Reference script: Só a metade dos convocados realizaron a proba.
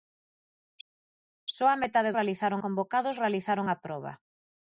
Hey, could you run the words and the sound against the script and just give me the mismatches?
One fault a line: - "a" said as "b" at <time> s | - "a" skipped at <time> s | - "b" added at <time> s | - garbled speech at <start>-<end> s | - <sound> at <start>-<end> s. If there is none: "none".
- "dos" said as "realizaron" at 2.2 s